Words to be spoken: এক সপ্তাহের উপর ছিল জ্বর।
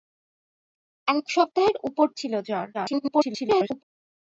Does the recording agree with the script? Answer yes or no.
no